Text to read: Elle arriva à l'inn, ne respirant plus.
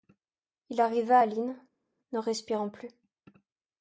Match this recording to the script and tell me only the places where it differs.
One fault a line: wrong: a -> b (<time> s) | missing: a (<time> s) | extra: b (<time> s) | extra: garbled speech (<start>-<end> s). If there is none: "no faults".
wrong: Elle -> Il (0.7 s)